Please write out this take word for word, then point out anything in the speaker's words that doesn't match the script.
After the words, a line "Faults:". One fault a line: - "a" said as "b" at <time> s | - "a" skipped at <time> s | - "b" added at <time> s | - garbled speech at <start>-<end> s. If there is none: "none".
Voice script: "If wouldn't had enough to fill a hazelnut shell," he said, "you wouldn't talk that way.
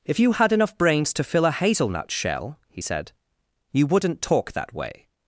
"If you had enough brains to fill a hazelnut shell," he said, "you wouldn't talk that way.
Faults:
- "wouldn't" said as "you" at 0.2 s
- "brains" added at 0.8 s